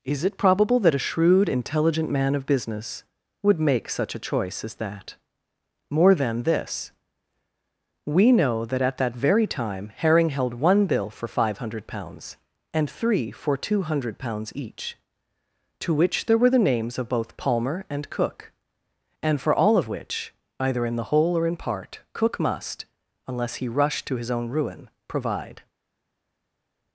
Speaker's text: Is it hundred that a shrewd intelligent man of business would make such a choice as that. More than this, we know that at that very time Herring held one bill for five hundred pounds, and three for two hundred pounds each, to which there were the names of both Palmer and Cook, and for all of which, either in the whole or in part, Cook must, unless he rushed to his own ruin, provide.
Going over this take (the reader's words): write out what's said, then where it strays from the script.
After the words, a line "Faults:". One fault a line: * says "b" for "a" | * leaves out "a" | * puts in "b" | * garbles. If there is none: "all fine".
Is it probable that a shrewd intelligent man of business would make such a choice as that. More than this, we know that at that very time Herring held one bill for five hundred pounds, and three for two hundred pounds each, to which there were the names of both Palmer and Cook, and for all of which, either in the whole or in part, Cook must, unless he rushed to his own ruin, provide.
Faults:
* says "probable" for "hundred"